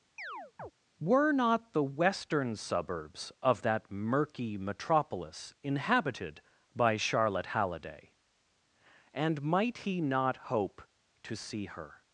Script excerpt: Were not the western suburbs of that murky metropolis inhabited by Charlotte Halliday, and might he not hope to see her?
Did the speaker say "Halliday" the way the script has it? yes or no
yes